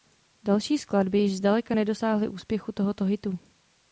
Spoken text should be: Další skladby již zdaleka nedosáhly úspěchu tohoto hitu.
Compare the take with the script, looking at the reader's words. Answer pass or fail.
pass